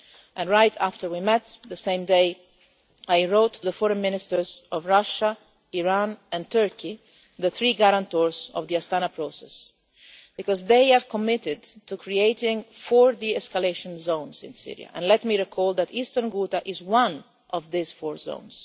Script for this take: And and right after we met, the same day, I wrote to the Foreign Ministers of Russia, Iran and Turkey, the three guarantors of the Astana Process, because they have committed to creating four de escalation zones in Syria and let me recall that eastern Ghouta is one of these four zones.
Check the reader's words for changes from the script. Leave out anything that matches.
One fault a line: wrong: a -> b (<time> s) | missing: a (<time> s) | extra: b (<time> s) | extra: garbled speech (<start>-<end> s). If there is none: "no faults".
missing: and (0.5 s)